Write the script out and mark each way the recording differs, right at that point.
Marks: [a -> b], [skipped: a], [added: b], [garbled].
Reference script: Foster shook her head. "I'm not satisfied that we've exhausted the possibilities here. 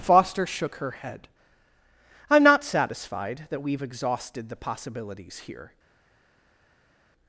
Foster shook her head. "I'm not satisfied that we've exhausted the possibilities here.